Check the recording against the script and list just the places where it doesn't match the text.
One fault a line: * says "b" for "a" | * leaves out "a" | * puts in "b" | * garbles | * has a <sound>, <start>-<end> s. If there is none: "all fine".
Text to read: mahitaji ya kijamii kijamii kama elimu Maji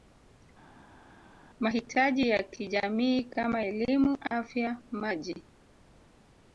* leaves out "kijamii"
* puts in "Afya"